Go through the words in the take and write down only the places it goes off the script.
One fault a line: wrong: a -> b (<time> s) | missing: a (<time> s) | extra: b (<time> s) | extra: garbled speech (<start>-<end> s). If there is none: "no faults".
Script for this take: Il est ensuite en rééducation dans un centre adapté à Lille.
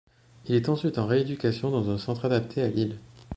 no faults